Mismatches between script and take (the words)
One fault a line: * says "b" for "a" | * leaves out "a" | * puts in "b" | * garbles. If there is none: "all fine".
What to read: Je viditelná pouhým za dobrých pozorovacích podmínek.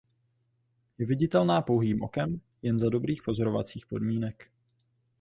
* puts in "okem jen"